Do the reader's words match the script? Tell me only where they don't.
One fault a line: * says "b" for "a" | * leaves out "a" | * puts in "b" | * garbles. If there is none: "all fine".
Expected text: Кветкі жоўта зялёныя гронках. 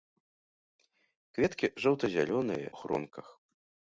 all fine